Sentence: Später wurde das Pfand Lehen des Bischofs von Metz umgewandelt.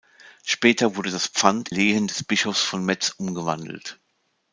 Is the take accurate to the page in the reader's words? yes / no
yes